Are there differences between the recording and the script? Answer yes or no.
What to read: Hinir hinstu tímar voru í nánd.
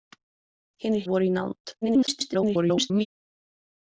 yes